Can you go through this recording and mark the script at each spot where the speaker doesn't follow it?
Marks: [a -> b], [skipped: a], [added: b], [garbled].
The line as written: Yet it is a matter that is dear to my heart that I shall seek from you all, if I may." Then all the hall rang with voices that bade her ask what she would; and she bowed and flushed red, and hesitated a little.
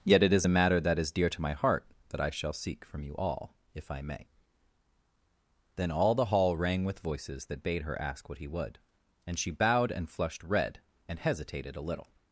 Yet it is a matter that is dear to my heart that I shall seek from you all, if I may." Then all the hall rang with voices that bade her ask what [she -> he] would; and she bowed and flushed red, and hesitated a little.